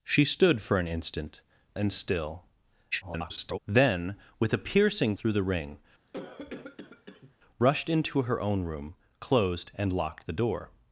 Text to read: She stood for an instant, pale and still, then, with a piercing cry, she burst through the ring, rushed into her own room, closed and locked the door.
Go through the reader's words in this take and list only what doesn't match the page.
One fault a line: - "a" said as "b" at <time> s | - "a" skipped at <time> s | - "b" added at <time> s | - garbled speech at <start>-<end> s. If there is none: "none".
- "pale" skipped at 1.4 s
- garbled speech at 2.9-3.6 s
- "cry she burst" skipped at 5.1 s